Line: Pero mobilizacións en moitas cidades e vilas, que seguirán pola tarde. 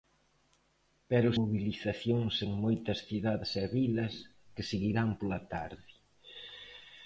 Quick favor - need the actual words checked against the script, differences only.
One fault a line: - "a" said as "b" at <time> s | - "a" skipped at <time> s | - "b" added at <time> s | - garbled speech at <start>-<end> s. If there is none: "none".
none